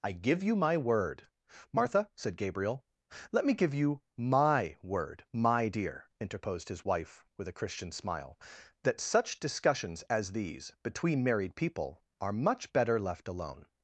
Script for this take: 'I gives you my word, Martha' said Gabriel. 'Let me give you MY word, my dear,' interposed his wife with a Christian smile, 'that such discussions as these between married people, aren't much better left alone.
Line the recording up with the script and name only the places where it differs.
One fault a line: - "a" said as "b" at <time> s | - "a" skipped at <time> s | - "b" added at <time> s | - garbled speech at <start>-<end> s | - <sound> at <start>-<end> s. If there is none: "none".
- "gives" said as "give" at 0.1 s
- "aren't" said as "are" at 12.2 s